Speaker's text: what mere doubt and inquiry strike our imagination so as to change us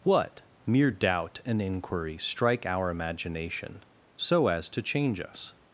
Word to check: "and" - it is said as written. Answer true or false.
true